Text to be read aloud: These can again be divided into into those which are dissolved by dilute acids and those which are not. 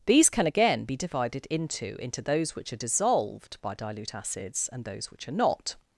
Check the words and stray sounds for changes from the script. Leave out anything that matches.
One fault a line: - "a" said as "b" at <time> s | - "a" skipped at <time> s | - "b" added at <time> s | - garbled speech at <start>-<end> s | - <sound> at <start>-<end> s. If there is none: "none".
none